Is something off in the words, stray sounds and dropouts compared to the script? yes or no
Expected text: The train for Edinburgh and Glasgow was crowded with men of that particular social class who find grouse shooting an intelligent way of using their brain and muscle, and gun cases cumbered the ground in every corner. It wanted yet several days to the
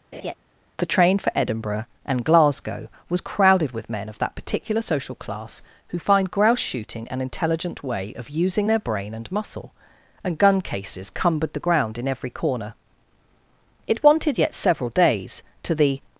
yes